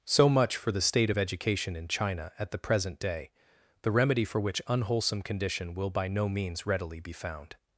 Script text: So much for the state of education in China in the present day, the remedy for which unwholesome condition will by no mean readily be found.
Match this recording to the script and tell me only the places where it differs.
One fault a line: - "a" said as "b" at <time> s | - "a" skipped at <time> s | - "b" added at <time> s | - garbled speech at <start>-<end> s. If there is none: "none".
- "in" said as "at" at 2.4 s
- "mean" said as "means" at 6.3 s